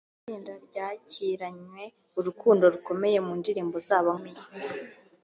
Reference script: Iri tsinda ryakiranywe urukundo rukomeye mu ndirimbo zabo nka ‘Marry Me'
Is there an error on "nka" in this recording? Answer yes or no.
yes